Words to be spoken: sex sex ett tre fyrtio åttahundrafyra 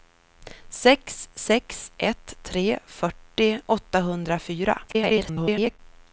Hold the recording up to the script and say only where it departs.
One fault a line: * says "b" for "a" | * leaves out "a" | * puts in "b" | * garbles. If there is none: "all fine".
* garbles